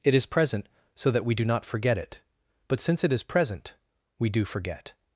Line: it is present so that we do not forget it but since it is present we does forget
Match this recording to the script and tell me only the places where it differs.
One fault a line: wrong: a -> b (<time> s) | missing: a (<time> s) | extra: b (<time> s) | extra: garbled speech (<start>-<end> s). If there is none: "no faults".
wrong: does -> do (4.3 s)